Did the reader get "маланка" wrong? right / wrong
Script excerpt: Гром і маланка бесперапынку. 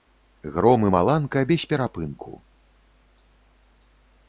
right